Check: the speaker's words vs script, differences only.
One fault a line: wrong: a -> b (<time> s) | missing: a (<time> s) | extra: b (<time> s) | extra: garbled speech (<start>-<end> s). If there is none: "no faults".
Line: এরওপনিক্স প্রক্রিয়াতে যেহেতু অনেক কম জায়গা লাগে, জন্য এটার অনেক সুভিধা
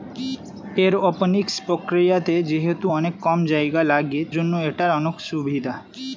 no faults